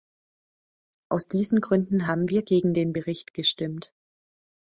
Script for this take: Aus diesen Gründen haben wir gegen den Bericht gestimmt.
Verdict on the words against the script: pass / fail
pass